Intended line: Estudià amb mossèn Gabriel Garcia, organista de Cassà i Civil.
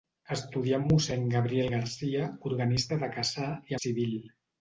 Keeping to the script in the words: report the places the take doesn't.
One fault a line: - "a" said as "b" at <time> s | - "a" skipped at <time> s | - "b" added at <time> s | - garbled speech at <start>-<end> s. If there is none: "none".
none